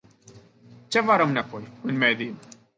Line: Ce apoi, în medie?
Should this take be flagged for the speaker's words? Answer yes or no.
yes